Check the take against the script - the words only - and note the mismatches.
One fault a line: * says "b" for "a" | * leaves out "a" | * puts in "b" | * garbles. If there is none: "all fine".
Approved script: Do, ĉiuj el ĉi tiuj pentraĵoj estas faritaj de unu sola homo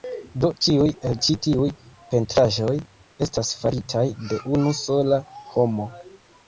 all fine